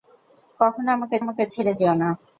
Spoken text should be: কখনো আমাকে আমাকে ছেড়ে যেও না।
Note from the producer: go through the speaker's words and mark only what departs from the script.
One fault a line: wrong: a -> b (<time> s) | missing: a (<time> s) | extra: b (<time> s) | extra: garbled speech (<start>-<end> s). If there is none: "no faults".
no faults